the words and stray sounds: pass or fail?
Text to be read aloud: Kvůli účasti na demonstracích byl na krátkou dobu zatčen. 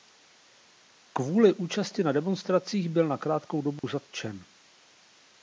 fail